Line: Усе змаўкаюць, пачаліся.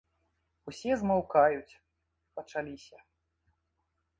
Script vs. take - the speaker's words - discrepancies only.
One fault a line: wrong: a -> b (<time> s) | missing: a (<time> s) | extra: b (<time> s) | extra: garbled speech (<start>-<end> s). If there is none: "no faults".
no faults